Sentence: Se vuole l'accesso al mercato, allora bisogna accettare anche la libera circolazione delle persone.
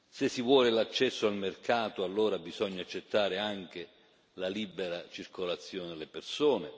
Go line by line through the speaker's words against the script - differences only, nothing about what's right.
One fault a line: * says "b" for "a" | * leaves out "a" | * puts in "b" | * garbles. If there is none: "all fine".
* puts in "si"